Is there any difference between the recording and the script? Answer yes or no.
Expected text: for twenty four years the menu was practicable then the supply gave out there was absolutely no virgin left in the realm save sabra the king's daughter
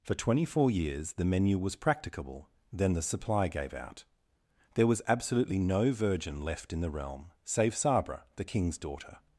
no